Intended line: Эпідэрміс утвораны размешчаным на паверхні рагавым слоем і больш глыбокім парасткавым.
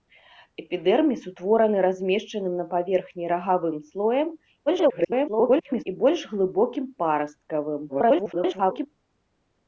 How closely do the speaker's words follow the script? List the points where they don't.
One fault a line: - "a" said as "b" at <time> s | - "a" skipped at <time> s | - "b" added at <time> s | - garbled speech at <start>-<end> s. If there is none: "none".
- garbled speech at 4.7-5.8 s
- garbled speech at 7.9-8.9 s